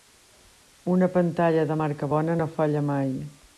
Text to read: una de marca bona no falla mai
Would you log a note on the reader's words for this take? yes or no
yes